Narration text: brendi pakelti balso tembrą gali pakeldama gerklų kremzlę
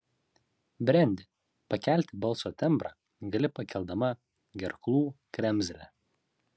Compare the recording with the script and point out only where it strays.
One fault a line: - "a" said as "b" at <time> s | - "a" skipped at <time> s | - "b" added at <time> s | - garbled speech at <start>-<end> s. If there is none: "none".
none